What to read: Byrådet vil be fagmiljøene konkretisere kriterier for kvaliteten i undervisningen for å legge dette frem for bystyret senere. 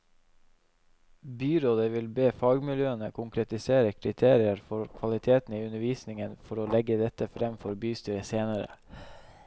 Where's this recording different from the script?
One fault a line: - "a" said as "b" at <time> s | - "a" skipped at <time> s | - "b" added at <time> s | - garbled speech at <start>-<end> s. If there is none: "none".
none